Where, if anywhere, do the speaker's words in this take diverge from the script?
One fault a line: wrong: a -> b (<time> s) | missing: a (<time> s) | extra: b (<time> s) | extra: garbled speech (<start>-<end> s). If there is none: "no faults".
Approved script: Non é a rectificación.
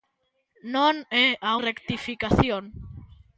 no faults